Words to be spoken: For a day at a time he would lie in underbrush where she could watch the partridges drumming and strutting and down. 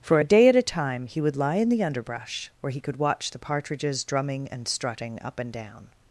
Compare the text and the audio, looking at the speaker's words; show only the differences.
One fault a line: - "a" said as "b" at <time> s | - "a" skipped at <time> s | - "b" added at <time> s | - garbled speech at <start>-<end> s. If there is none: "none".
- "the" added at 1.7 s
- "she" said as "he" at 2.7 s
- "up" added at 5.2 s